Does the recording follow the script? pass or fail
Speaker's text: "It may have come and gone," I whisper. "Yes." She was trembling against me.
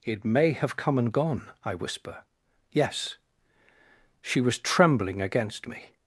pass